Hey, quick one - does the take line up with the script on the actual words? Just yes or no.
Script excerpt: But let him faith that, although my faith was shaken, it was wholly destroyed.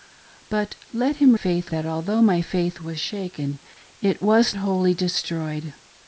yes